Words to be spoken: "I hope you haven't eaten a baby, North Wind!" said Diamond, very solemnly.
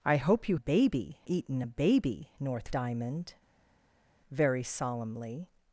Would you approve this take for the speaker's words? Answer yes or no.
no